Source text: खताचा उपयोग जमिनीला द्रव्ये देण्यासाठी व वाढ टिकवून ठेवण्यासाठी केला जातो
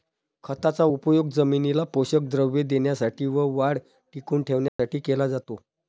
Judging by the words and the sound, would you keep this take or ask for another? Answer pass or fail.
fail